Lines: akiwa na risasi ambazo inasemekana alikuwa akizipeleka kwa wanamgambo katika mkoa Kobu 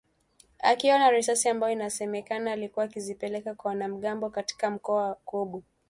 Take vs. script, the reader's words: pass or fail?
pass